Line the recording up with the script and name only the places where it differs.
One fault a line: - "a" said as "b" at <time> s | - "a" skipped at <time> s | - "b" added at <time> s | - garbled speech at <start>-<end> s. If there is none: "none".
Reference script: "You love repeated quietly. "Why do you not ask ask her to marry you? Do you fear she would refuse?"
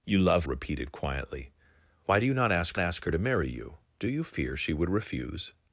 none